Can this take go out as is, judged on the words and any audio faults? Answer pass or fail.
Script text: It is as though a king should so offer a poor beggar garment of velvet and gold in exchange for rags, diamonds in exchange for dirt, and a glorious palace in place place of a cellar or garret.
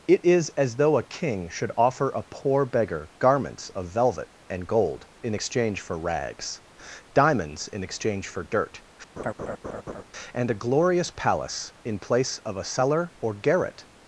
fail